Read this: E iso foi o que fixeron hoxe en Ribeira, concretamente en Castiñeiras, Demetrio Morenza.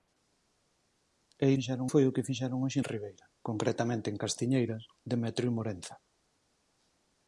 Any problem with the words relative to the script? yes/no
yes